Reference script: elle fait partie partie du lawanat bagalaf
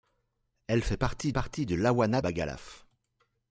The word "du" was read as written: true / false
true